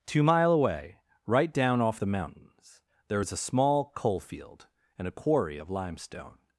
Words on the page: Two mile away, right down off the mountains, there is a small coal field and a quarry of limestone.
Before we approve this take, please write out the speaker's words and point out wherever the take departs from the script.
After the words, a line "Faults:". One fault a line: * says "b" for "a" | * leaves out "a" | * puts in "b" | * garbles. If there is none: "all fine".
Two mile away, right down off the mountains, there is a small coal field and a quarry of limestone.
Faults:
all fine